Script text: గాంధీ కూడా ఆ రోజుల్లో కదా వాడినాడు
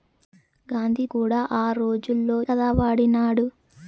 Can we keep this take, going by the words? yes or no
yes